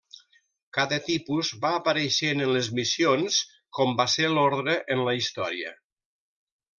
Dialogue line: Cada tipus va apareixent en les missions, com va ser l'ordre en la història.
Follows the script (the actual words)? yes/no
yes